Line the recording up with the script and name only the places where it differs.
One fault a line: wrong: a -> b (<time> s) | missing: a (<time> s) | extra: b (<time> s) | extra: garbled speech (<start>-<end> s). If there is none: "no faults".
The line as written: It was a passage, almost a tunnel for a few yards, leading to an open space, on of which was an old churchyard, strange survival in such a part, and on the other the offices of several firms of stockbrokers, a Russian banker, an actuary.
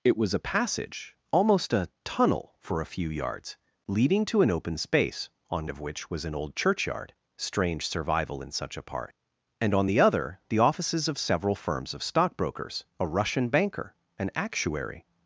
no faults